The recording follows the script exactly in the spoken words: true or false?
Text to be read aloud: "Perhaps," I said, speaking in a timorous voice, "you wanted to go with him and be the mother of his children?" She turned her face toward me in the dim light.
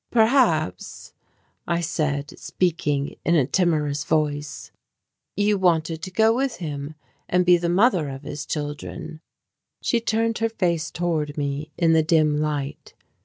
true